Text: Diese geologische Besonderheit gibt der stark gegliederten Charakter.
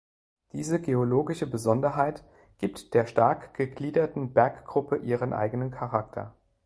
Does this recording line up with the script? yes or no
no